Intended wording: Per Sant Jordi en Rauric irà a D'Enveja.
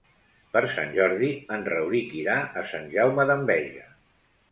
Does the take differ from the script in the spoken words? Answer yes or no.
yes